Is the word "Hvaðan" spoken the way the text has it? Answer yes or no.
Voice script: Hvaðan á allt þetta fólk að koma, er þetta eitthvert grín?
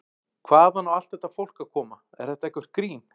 yes